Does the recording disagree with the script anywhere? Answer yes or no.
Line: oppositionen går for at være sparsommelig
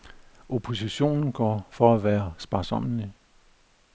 no